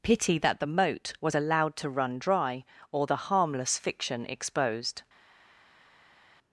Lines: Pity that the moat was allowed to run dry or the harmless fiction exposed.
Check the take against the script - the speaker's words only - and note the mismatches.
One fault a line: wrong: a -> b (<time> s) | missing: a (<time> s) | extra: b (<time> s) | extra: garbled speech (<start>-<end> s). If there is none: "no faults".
no faults